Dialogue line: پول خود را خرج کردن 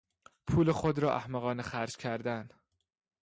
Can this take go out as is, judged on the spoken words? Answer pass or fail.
fail